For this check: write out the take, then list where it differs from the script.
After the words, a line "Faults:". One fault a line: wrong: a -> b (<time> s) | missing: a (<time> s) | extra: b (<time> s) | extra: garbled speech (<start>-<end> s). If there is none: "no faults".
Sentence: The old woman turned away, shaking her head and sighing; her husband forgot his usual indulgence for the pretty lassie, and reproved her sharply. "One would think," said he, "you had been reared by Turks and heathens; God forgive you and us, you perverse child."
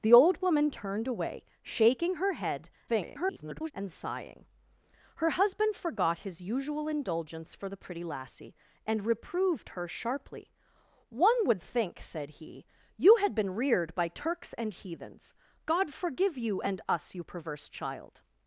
The old woman turned away, shaking her head [garbled] and sighing; her husband forgot his usual indulgence for the pretty lassie, and reproved her sharply. "One would think," said he, "you had been reared by Turks and heathens; God forgive you and us, you perverse child."
Faults:
extra: garbled speech (2.9-3.7 s)